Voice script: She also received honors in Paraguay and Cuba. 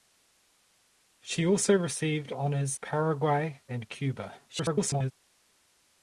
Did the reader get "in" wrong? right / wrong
wrong